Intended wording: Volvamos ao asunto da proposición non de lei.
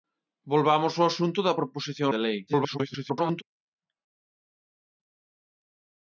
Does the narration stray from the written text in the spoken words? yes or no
yes